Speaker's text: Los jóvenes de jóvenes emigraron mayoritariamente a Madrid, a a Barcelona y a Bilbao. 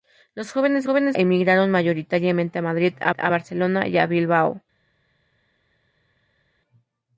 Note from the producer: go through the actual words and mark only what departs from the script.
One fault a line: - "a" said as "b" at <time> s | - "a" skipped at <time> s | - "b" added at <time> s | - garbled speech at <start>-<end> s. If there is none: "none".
none